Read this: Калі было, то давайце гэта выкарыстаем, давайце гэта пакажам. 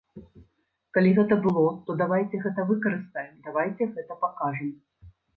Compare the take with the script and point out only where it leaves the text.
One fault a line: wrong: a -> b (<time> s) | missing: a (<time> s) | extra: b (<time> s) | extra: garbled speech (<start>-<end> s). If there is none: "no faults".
extra: гэта (1.1 s)